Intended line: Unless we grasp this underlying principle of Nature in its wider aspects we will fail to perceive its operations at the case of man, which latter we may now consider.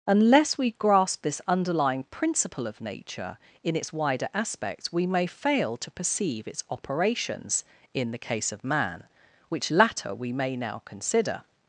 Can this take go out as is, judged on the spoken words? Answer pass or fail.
fail